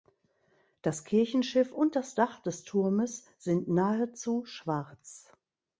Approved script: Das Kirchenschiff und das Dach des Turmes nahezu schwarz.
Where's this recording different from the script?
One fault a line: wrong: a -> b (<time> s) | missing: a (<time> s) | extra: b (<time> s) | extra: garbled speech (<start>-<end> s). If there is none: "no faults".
extra: sind (3.4 s)